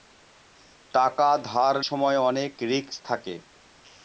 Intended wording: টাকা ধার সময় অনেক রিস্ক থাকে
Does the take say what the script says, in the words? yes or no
yes